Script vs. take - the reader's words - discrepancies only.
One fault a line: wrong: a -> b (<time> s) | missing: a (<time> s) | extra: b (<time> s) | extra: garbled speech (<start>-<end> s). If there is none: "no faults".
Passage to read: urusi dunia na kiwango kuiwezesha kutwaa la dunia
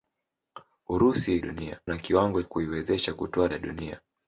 no faults